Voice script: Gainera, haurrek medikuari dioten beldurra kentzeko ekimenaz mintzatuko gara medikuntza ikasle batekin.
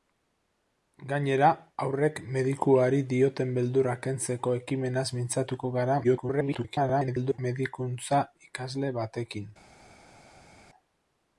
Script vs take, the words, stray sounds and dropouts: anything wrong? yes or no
yes